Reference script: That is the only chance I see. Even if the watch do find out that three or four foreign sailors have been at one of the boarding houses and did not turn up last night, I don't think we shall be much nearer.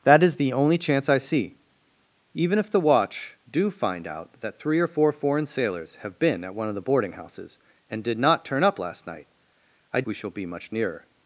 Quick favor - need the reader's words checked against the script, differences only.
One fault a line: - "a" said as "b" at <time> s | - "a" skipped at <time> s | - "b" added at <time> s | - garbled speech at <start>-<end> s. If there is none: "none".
- "don't think" skipped at 10.0 s